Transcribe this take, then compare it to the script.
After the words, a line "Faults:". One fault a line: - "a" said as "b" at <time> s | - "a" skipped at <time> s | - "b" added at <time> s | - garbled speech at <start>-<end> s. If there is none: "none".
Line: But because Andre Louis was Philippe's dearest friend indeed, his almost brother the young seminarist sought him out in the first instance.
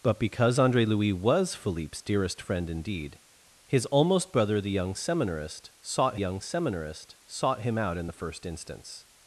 But because Andre Louis was Philippe's dearest friend indeed, his almost brother the young seminarist sought young seminarist sought him out in the first instance.
Faults:
- "young seminarist sought" added at 6.2 s